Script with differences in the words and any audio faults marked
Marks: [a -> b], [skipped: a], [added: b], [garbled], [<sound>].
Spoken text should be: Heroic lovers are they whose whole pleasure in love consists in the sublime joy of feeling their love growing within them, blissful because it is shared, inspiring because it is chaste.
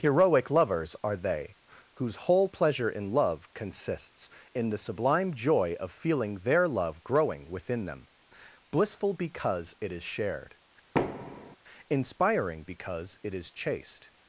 Heroic lovers are they whose whole pleasure in love consists in the sublime joy of feeling their love growing within them, blissful because it is shared, [thud] inspiring because it is chaste.